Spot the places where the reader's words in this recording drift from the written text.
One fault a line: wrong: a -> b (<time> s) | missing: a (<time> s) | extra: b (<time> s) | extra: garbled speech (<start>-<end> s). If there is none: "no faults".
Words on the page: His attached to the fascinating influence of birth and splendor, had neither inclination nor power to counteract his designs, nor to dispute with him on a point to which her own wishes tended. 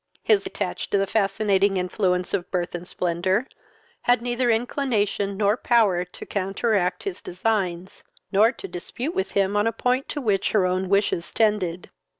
no faults